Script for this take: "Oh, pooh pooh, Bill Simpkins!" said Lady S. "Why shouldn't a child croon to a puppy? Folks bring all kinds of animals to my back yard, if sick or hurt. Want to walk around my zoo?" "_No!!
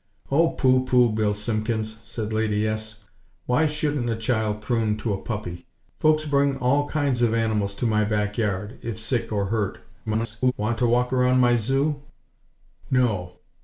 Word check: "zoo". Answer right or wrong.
right